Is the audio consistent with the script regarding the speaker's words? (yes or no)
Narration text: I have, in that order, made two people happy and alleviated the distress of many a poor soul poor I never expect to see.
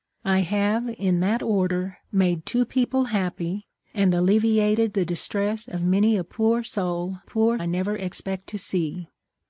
yes